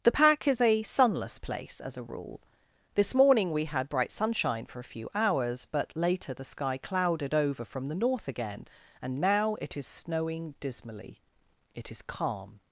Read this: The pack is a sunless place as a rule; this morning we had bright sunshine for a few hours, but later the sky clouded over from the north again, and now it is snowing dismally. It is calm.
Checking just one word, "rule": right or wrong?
right